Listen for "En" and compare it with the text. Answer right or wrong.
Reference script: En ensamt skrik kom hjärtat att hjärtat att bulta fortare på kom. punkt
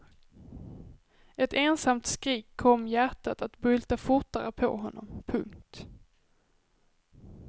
wrong